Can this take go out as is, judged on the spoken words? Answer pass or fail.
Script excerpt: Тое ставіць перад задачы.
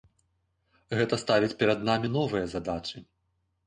fail